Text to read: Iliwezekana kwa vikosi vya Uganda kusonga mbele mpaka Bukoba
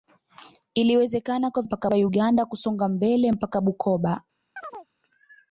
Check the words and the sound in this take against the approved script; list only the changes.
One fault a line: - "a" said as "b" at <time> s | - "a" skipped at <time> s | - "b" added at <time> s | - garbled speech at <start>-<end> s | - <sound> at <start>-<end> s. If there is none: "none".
- "vikosi" said as "mpaka" at 1.6 s
- chirp at 4.6-4.9 s